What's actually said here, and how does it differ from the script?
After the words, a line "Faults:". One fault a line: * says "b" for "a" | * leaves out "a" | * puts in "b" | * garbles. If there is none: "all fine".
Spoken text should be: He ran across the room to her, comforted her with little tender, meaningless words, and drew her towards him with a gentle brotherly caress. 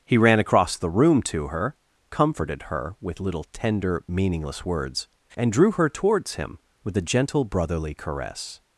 He ran across the room to her, comforted her with little tender, meaningless words, and drew her towards him with a gentle brotherly caress.
Faults:
all fine